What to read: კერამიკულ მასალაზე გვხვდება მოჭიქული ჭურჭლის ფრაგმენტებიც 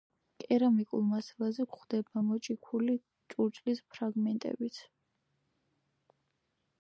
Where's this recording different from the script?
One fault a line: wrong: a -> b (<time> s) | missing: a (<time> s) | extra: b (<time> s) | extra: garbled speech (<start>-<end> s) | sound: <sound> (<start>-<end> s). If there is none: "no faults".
no faults